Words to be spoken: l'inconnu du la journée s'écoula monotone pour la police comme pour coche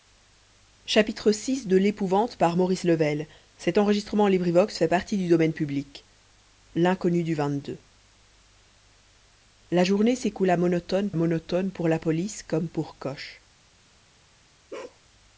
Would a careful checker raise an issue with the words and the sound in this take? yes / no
yes